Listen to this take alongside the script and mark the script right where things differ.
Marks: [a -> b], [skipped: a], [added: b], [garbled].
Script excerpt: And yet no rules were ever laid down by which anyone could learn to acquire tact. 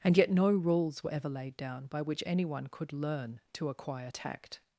And yet no rules were ever laid down by which anyone could learn to acquire tact.